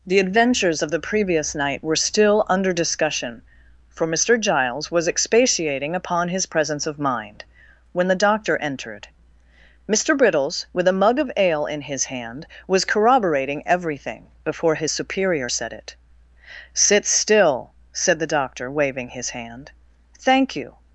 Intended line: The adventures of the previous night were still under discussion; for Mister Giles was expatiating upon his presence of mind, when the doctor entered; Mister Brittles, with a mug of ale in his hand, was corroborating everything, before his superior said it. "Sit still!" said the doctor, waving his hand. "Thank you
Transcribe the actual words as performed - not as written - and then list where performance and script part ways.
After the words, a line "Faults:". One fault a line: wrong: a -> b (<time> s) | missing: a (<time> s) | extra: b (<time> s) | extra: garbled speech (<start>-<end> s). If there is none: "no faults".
The adventures of the previous night were still under discussion; for Mister Giles was expatiating upon his presence of mind, when the doctor entered; Mister Brittles, with a mug of ale in his hand, was corroborating everything, before his superior said it. "Sit still!" said the doctor, waving his hand. "Thank you
Faults:
no faults